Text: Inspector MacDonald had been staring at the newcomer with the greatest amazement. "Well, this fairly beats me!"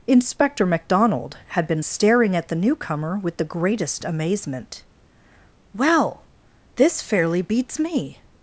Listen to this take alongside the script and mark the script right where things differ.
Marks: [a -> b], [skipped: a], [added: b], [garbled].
Inspector MacDonald had been staring at the newcomer with the greatest amazement. "Well, this fairly beats me!"